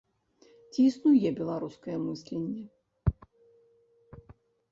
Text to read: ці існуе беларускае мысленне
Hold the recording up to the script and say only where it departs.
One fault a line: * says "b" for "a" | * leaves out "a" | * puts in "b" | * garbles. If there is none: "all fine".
all fine